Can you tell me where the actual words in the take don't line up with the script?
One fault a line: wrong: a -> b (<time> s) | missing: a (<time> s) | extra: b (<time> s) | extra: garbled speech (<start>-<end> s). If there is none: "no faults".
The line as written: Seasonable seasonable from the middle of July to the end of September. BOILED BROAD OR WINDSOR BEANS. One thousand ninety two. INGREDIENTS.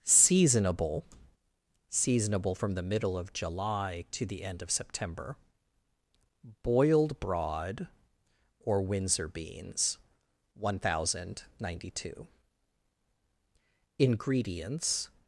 no faults